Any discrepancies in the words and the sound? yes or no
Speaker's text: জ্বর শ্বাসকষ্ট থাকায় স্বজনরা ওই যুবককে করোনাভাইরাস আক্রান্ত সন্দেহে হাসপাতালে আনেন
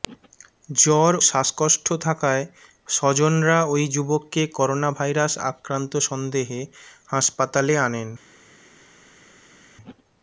no